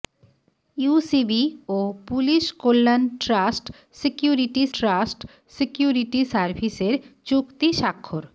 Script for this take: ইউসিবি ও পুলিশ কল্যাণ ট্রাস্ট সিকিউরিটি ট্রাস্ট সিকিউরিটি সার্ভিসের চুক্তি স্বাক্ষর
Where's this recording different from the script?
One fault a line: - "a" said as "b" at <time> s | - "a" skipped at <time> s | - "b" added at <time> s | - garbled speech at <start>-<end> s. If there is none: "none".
none